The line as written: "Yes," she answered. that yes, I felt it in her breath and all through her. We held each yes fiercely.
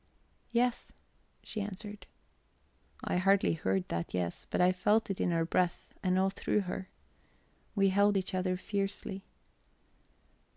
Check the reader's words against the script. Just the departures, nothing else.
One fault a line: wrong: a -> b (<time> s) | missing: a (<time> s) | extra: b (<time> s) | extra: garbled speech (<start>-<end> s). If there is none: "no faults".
extra: I hardly heard (3.0 s)
extra: but (4.5 s)
wrong: yes -> other (8.3 s)